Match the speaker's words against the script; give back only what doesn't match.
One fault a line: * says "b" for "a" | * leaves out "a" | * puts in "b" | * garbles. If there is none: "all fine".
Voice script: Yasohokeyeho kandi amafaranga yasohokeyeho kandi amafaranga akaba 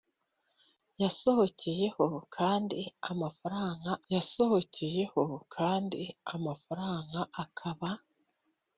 all fine